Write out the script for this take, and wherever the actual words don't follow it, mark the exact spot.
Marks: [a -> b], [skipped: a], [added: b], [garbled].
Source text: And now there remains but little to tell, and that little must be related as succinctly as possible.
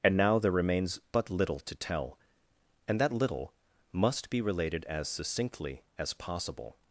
And now there remains but little to tell, and that little must be related as succinctly as possible.